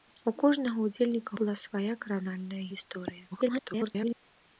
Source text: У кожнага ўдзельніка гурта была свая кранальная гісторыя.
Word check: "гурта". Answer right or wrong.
wrong